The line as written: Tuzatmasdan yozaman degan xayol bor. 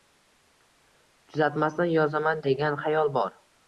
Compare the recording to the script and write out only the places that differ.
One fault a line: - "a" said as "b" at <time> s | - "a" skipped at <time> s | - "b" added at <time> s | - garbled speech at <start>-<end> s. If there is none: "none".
none